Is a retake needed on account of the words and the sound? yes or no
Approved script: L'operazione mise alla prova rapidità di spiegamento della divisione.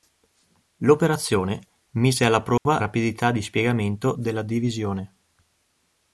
yes